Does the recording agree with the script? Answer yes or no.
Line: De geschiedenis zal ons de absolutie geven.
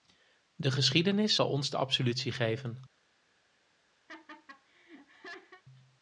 yes